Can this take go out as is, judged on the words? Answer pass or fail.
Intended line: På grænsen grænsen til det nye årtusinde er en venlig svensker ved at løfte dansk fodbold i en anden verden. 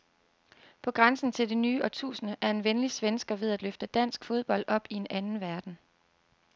fail